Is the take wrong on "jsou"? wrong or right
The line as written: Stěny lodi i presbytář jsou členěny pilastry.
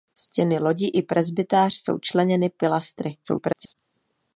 right